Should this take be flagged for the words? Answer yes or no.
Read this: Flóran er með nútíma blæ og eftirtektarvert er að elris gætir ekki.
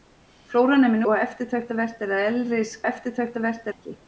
yes